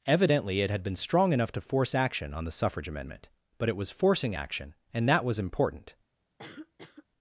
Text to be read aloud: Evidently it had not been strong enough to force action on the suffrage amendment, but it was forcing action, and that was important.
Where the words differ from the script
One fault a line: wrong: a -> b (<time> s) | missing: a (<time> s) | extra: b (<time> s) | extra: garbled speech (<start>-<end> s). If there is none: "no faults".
missing: not (0.8 s)